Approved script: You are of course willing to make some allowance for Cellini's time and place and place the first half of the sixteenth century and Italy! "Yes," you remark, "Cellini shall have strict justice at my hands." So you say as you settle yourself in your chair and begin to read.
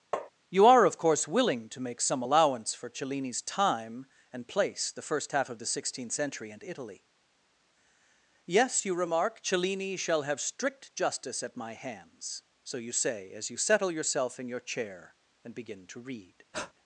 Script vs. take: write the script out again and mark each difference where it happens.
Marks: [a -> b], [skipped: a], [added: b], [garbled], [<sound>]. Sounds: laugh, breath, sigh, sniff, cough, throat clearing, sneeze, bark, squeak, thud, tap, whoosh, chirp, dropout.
[tap] You are of course willing to make some allowance for Cellini's time and place [skipped: and place] the first half of the sixteenth century and Italy! "Yes," you remark, "Cellini shall have strict justice at my hands." So you say as you settle yourself in your chair and begin to read. [breath]